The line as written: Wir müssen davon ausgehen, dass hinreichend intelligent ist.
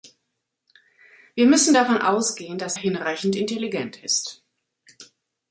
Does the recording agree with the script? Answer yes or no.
yes